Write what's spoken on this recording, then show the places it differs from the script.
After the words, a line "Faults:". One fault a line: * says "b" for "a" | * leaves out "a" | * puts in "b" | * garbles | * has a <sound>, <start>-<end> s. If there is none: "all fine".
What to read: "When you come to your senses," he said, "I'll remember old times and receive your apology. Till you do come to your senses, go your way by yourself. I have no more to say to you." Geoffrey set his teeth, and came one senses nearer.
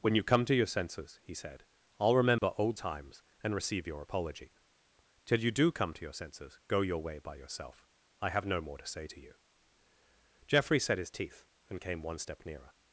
"When you come to your senses," he said, "I'll remember old times and receive your apology. Till you do come to your senses, go your way by yourself. I have no more to say to you." Geoffrey set his teeth, and came one step nearer.
Faults:
* has a dropout, 2.4-2.4 s
* says "step" for "senses"